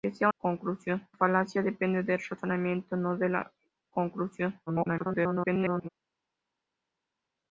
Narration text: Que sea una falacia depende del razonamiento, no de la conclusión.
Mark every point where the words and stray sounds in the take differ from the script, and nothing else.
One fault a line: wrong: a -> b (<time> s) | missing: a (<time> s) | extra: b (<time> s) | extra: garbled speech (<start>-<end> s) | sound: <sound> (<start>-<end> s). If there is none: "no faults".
wrong: una -> conclusión (0.4 s)
extra: garbled speech (4.7-5.9 s)